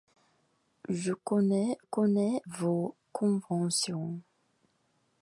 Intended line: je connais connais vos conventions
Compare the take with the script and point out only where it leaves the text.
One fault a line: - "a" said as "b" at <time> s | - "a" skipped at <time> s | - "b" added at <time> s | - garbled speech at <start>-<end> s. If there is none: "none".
none